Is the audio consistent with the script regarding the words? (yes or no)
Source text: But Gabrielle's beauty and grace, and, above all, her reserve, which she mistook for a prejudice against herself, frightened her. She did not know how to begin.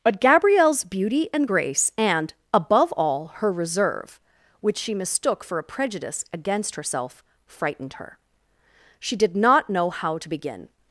yes